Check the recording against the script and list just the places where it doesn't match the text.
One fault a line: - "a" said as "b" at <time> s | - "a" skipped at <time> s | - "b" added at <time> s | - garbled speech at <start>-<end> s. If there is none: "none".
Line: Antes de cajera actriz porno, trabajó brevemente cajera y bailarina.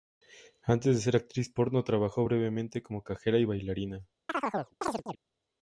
- "cajera" said as "ser" at 1.0 s
- "como" added at 2.8 s